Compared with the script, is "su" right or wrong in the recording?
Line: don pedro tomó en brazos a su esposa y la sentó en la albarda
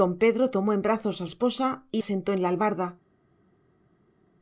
wrong